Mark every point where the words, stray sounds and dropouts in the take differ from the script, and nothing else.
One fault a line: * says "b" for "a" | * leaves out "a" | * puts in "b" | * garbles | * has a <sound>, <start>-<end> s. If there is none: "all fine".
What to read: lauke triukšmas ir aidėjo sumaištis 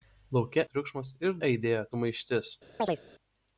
* has a chirp, 2.8-3.0 s